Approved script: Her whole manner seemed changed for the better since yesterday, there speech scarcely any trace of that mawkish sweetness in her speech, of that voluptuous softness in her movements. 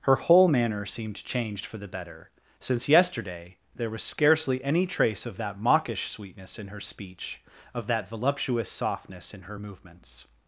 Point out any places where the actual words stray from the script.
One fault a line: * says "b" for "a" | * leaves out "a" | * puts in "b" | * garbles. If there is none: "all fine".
* says "was" for "speech"